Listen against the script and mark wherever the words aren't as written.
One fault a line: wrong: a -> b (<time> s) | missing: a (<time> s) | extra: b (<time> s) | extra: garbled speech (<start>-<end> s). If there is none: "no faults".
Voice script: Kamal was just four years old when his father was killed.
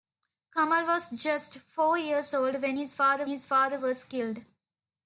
extra: his father (3.3 s)